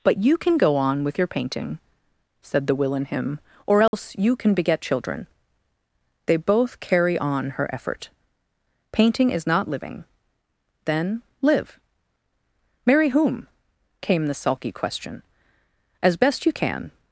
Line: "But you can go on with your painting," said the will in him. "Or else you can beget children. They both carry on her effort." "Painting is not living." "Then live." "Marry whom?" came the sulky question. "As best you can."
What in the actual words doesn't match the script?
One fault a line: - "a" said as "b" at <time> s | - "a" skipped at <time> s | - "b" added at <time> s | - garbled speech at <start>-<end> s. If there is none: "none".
none